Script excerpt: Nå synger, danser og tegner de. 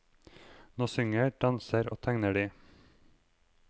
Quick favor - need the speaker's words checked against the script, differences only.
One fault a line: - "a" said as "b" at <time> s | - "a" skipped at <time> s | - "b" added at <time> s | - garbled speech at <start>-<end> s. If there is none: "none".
none